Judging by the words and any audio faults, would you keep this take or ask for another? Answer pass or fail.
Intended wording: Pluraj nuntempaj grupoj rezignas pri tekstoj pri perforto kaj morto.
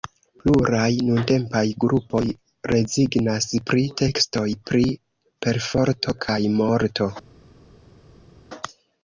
pass